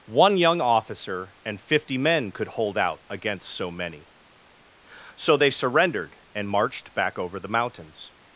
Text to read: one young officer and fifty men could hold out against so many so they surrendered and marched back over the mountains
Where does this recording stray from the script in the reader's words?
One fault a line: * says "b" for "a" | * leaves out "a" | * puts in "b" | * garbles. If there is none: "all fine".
all fine